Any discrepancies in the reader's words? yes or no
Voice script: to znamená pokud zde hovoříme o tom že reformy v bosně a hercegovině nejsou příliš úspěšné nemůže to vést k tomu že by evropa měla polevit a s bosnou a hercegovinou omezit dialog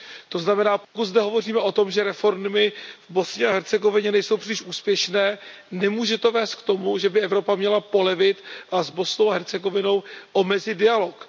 no